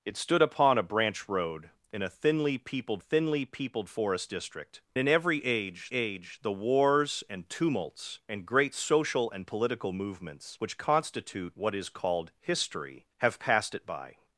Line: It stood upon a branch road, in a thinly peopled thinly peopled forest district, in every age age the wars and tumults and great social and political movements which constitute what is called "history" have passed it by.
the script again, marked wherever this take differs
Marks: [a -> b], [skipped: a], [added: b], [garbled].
It stood upon a branch road, in a thinly peopled thinly peopled forest district, in every age age the wars and tumults and great social and political movements which constitute what is called "history" have passed it by.